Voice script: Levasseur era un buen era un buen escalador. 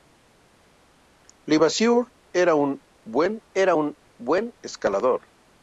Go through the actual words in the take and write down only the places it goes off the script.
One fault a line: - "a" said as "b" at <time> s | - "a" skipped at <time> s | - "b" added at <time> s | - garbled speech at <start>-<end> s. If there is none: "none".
none